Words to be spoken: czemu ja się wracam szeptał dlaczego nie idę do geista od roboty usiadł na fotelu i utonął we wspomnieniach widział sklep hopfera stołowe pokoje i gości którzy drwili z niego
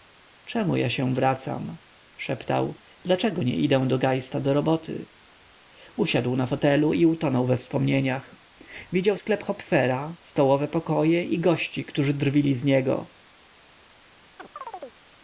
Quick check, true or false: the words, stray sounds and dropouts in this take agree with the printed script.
false